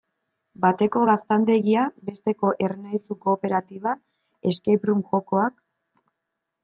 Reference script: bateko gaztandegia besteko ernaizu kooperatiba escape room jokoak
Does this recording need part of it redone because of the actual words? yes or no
no